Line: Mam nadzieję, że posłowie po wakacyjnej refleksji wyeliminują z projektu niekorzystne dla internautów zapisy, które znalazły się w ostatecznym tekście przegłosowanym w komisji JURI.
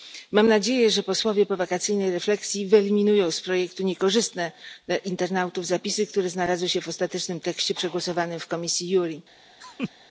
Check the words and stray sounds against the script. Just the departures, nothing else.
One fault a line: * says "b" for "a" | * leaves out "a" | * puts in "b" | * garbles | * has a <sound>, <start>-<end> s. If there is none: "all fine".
* has a laugh, 9.6-9.9 s